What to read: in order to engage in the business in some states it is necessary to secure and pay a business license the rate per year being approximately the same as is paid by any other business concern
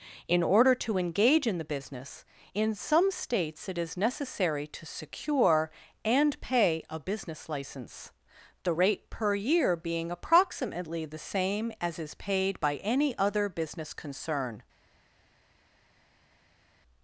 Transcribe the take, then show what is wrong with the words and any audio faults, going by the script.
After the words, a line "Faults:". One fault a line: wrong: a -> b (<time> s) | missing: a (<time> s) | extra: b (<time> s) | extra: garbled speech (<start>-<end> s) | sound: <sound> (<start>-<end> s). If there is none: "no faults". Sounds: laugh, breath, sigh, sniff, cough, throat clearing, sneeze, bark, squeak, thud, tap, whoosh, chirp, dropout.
in order to engage in the business in some states it is necessary to secure and pay a business license the rate per year being approximately the same as is paid by any other business concern
Faults:
no faults